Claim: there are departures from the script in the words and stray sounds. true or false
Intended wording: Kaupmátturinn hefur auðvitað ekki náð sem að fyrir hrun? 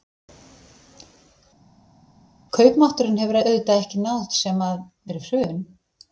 false